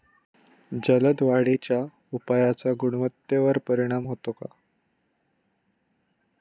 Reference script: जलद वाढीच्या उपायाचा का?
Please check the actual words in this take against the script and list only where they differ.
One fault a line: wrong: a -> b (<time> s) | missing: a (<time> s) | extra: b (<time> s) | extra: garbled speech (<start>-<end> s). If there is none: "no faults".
extra: गुणवत्तेवर परिणाम होतो (2.8 s)